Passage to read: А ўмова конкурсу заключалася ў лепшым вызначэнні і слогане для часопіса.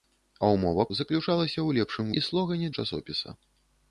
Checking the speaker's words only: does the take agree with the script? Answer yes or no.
no